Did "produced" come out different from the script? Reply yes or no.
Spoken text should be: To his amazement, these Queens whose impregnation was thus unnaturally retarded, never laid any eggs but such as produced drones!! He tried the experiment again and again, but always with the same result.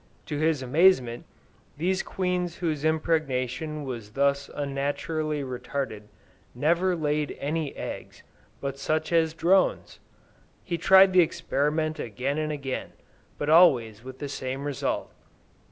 yes